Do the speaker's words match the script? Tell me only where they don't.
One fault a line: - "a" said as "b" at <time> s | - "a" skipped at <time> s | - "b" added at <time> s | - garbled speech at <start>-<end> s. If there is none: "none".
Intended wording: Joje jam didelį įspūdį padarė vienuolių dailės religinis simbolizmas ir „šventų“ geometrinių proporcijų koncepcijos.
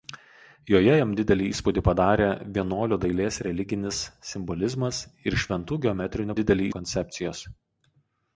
- "proporcijų" said as "didelį" at 6.4 s